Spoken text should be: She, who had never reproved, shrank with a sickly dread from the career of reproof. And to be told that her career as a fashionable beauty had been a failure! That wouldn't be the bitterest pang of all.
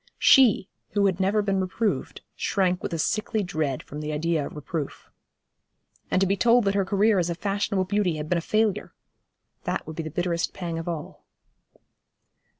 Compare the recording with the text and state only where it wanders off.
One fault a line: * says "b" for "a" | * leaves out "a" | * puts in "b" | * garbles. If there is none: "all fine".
* puts in "been"
* says "idea" for "career"
* says "would" for "wouldn't"